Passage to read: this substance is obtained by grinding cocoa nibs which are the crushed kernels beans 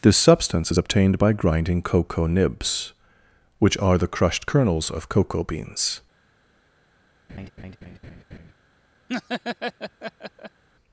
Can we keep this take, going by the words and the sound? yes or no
no